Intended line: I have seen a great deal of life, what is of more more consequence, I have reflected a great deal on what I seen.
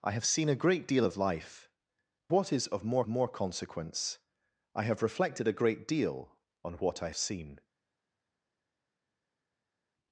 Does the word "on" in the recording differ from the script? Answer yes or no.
no